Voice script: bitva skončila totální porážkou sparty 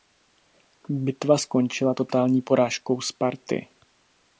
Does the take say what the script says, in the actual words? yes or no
yes